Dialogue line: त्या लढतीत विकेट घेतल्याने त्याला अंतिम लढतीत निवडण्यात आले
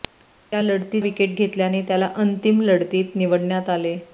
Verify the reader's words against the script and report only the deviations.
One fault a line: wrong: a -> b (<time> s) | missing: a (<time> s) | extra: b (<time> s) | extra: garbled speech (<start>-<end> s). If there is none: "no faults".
no faults